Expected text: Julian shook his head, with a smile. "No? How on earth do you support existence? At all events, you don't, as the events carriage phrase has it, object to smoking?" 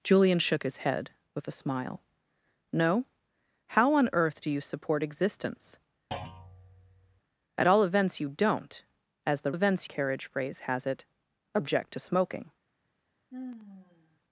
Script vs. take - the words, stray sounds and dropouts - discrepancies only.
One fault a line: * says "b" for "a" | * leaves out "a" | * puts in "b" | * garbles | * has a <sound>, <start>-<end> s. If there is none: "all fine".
* has a thud, 6.1-7.2 s
* has a sigh, 13.3-14.2 s